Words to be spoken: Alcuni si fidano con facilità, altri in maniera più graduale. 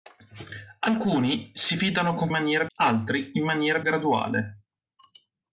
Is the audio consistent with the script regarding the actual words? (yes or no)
no